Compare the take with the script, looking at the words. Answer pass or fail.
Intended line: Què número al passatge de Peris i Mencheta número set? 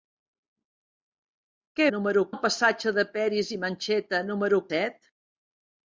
pass